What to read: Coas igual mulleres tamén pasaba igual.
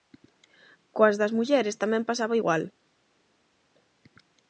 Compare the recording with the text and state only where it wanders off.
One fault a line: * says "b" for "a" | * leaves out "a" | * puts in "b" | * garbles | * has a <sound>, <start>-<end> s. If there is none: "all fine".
* says "das" for "igual"